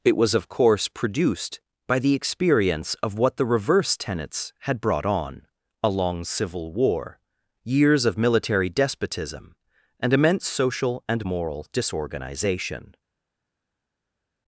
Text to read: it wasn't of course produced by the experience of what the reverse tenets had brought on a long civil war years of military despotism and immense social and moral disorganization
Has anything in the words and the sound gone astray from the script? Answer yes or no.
yes